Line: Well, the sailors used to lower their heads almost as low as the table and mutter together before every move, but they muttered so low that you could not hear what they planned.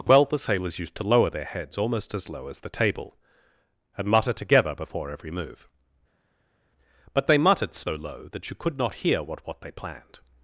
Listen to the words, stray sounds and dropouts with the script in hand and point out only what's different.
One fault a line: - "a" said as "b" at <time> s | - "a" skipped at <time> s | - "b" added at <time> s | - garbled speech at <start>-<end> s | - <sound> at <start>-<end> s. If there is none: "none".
- "what" added at 9.5 s